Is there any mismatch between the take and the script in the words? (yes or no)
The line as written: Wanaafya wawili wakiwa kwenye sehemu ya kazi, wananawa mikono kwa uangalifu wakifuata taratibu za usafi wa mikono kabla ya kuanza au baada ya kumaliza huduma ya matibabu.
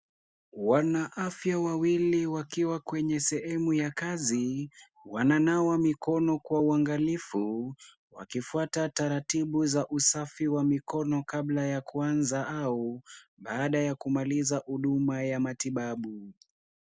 no